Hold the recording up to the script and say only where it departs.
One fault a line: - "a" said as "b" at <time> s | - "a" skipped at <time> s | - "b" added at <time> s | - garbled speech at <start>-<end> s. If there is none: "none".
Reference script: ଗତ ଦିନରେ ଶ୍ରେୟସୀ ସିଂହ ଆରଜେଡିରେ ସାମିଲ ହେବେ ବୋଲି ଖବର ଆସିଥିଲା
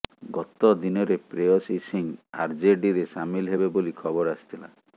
none